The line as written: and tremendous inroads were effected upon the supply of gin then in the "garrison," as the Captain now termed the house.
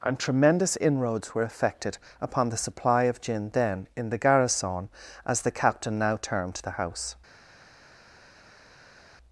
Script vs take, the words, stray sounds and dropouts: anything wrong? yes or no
no